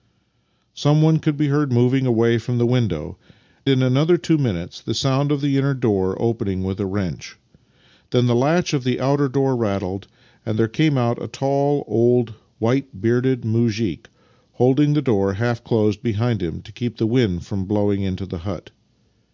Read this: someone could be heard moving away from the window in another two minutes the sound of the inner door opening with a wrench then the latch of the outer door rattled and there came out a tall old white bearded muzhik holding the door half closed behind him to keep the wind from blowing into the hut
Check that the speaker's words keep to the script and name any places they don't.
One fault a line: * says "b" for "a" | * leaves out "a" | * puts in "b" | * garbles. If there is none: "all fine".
all fine